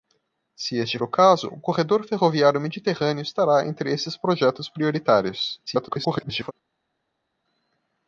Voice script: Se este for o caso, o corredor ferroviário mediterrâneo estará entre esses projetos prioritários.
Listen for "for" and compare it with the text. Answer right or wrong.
wrong